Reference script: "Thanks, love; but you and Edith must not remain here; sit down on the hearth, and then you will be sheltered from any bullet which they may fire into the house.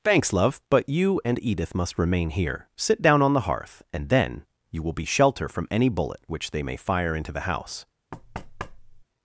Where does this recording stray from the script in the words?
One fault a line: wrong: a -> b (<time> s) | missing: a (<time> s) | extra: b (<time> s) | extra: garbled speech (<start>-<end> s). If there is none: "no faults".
missing: not (2.0 s)
wrong: sheltered -> shelter (5.0 s)